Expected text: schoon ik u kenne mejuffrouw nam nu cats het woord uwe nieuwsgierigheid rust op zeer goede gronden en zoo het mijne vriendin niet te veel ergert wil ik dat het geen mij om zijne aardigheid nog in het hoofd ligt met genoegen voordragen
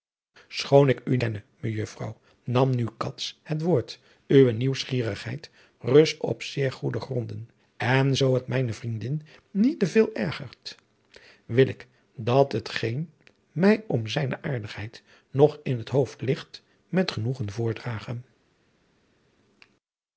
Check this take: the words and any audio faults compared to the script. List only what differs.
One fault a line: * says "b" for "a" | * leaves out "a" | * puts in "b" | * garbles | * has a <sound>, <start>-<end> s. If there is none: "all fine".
all fine